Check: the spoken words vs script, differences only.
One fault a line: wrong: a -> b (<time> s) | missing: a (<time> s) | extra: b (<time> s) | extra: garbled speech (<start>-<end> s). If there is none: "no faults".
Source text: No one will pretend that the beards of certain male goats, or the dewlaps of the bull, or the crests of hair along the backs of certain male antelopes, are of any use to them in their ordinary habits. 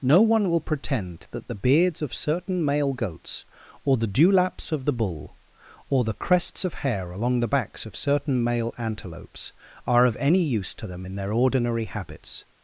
no faults